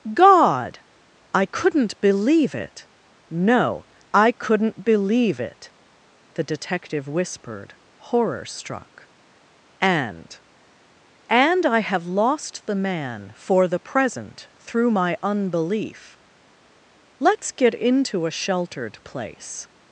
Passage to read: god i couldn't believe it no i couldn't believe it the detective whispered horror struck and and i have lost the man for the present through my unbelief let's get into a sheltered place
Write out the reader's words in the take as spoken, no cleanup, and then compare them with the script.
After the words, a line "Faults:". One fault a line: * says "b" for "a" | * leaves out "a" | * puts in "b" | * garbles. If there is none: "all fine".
god i couldn't believe it no i couldn't believe it the detective whispered horror struck and and i have lost the man for the present through my unbelief let's get into a sheltered place
Faults:
all fine